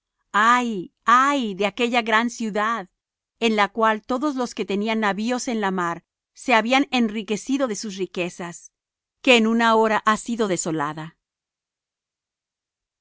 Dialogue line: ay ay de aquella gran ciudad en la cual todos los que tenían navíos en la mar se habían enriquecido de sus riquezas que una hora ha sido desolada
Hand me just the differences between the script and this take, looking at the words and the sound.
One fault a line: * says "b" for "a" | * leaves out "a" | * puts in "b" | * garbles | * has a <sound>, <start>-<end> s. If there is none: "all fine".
* puts in "en"